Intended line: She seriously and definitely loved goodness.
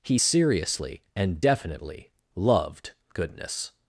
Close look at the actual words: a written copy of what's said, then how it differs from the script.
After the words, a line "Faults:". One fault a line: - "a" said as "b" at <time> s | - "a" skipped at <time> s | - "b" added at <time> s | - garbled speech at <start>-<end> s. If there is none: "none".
He seriously and definitely loved goodness.
Faults:
- "She" said as "He" at 0.0 s